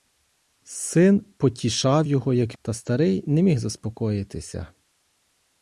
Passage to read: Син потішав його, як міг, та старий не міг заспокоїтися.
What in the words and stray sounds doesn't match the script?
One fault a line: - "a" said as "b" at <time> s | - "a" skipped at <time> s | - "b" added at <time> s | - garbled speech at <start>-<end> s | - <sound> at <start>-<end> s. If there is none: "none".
- "міг" skipped at 2.6 s